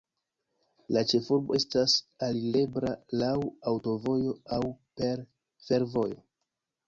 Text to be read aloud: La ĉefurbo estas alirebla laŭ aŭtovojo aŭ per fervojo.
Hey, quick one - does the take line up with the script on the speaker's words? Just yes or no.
yes